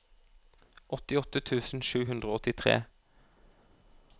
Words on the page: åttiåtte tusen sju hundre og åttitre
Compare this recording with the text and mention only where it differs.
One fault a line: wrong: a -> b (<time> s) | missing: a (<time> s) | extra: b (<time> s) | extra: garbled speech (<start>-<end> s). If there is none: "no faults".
no faults